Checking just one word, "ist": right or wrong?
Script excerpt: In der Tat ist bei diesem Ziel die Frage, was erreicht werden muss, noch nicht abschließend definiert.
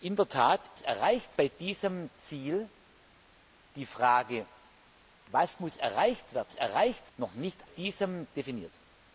wrong